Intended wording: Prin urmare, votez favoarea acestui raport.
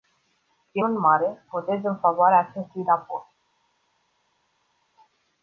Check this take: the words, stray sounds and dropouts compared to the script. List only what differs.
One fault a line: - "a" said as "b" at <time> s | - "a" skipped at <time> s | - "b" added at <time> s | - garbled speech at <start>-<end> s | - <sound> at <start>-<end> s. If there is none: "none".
- "în" added at 1.8 s